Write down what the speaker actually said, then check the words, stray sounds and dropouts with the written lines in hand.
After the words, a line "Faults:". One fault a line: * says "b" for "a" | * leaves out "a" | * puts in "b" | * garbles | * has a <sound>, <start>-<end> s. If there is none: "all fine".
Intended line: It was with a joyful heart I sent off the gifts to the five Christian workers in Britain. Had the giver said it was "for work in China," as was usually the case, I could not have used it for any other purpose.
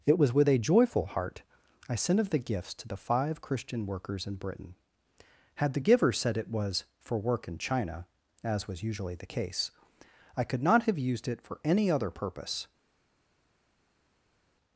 It was with a joyful heart I sent of the gifts to the five Christian workers in Britain. Had the giver said it was "for work in China," as was usually the case, I could not have used it for any other purpose.
Faults:
* says "of" for "off"